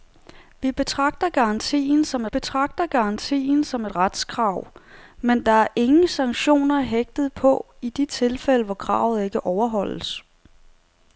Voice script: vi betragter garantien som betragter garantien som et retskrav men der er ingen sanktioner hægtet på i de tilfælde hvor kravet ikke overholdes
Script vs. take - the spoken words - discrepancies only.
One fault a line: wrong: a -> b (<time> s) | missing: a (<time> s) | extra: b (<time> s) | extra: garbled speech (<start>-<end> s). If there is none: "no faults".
no faults